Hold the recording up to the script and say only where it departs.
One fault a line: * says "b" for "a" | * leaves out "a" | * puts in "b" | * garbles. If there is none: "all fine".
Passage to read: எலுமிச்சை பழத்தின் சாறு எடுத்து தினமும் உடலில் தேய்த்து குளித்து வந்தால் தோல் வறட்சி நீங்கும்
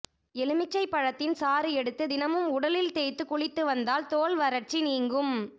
all fine